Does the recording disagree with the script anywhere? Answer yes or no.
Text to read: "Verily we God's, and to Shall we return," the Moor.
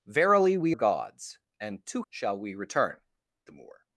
no